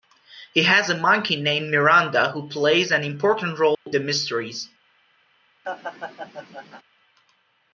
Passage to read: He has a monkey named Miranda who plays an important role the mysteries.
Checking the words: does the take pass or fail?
pass